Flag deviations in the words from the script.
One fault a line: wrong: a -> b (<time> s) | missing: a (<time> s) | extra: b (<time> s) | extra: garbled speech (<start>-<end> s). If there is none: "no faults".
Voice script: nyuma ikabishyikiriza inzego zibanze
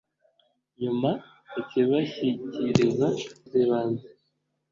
missing: inzego (3.1 s)